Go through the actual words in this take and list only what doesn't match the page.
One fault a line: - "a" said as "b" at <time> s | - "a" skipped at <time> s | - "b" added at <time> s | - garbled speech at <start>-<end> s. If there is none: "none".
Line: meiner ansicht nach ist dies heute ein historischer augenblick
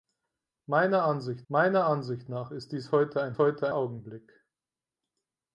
- "meiner ansicht" added at 1.5 s
- "historischer" said as "heute" at 3.4 s